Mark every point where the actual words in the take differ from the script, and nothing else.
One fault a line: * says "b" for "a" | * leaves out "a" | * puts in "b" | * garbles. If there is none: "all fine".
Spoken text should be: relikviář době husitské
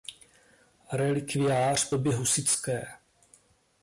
all fine